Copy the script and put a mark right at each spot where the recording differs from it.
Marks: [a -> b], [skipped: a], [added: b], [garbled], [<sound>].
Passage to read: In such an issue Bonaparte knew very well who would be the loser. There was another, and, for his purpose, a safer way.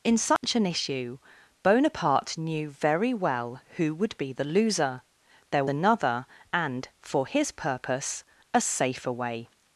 In such [dropout] an issue Bonaparte knew very well who would be the loser. There [skipped: was] another, and, for his purpose, a safer way.